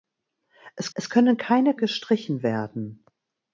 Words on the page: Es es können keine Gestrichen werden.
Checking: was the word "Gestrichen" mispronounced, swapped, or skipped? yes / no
no